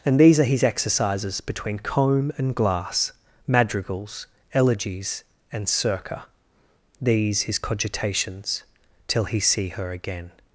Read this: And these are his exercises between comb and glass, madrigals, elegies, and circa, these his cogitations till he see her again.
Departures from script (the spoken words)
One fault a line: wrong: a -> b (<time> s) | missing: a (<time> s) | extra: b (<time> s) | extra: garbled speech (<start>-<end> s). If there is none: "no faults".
no faults